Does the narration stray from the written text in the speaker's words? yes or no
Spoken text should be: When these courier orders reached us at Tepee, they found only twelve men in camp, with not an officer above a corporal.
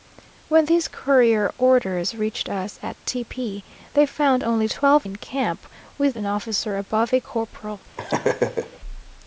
yes